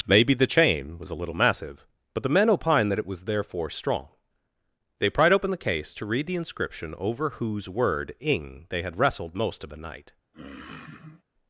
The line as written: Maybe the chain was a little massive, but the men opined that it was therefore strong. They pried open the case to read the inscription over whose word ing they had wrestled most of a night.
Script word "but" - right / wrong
right